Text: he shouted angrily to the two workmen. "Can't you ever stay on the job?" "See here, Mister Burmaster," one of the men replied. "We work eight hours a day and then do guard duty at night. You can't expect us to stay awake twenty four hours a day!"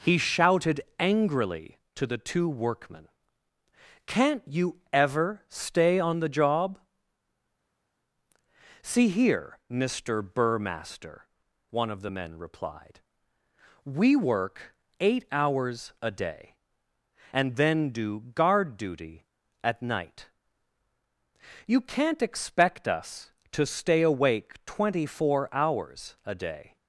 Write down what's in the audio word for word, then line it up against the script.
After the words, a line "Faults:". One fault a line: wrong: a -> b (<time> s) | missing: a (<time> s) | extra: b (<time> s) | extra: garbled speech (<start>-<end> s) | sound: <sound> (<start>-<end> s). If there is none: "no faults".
he shouted angrily to the two workmen. "Can't you ever stay on the job?" "See here, Mister Burmaster," one of the men replied. "We work eight hours a day and then do guard duty at night. You can't expect us to stay awake twenty four hours a day!"
Faults:
no faults